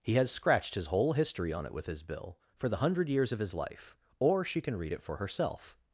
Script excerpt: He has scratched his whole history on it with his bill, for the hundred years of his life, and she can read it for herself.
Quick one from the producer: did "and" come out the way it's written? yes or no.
no